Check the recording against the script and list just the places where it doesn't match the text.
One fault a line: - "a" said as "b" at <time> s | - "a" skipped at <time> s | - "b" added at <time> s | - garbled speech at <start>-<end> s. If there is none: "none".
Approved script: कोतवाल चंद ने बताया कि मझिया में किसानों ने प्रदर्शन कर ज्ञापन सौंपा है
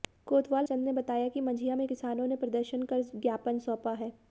none